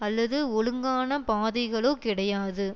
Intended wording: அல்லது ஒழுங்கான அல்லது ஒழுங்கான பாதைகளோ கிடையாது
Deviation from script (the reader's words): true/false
true